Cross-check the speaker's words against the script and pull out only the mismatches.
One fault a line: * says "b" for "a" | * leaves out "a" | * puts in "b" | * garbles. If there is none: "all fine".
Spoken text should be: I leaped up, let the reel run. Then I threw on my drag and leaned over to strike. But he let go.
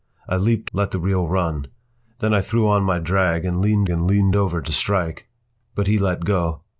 * leaves out "up"
* puts in "and leaned"